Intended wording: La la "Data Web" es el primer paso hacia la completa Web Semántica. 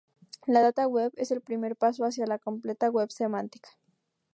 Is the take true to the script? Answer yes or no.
no